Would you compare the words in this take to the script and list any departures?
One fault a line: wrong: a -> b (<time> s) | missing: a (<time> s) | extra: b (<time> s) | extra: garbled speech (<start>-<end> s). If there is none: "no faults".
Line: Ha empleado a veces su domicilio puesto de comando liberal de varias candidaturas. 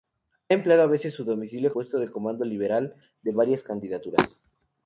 no faults